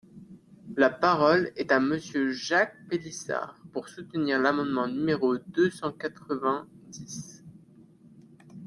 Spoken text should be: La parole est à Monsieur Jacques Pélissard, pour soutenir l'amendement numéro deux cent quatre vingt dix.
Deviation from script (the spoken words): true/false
false